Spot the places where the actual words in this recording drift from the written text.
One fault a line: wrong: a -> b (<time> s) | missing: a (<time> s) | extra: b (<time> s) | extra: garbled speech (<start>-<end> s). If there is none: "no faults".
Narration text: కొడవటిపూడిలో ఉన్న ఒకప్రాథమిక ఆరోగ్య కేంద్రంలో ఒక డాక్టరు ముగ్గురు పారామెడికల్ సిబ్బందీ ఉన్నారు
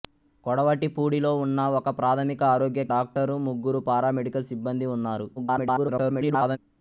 missing: కేంద్రంలో ఒక (2.9 s)
extra: garbled speech (5.4-6.6 s)